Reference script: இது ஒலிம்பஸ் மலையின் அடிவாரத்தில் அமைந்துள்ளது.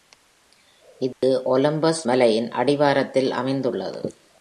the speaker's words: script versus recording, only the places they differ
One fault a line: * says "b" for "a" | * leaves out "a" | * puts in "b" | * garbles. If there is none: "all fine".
all fine